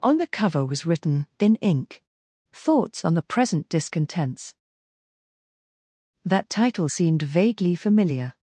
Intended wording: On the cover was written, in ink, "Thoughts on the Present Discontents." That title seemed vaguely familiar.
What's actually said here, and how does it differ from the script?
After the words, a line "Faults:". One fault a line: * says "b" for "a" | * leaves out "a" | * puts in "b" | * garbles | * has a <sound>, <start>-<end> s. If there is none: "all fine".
On the cover was written, in ink, "Thoughts on the Present Discontents." That title seemed vaguely familiar.
Faults:
all fine